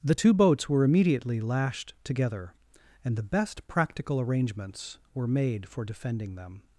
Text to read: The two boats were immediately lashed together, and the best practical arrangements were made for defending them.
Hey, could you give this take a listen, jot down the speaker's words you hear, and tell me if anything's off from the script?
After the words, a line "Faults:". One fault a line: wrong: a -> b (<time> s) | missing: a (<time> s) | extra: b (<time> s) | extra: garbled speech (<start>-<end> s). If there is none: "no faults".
The two boats were immediately lashed together, and the best practical arrangements were made for defending them.
Faults:
no faults